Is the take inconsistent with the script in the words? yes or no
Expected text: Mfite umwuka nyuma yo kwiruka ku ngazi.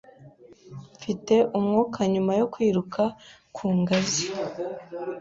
no